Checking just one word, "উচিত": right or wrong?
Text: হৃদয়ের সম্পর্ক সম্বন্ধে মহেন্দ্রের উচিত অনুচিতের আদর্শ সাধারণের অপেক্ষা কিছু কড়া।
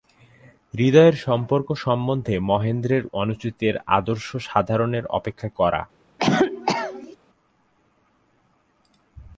wrong